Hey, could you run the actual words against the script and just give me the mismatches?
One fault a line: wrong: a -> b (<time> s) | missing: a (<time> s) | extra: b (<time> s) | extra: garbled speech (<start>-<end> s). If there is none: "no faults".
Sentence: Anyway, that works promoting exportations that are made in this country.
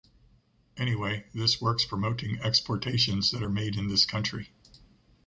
wrong: that -> this (1.3 s)